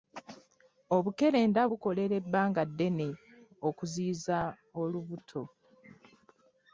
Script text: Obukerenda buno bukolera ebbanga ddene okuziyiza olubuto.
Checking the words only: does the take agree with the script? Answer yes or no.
no